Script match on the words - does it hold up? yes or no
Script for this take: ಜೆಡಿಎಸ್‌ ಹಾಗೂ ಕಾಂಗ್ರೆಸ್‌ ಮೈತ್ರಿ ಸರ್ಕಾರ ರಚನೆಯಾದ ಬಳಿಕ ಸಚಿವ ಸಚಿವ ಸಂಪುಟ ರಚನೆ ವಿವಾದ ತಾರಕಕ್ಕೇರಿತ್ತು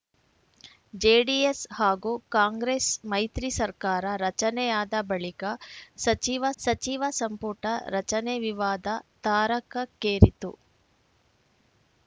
yes